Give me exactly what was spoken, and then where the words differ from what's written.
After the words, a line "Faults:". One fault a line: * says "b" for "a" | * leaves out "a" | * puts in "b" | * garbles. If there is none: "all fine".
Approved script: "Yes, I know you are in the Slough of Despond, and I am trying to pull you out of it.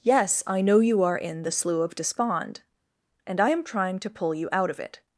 "Yes, I know you are in the Slough of Despond, and I am trying to pull you out of it.
Faults:
all fine